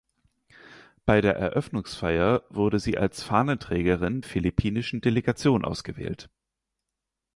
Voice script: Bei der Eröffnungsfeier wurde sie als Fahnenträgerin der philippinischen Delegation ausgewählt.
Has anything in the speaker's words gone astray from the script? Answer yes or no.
yes